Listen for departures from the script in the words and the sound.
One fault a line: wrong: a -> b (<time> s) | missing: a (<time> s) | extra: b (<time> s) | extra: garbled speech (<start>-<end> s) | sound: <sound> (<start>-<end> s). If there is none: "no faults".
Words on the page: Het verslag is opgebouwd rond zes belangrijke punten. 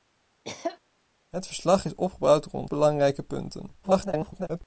sound: cough (0.4-0.8 s)
missing: zes (2.7 s)
extra: garbled speech (3.8-4.6 s)